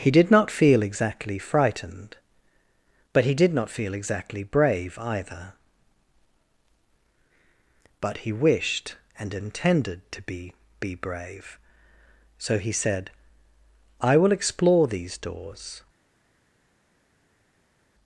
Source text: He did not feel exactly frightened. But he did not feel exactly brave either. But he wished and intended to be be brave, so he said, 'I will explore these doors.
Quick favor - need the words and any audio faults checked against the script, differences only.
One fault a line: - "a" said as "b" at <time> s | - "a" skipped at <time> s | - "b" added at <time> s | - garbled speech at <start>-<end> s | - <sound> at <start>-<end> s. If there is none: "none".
none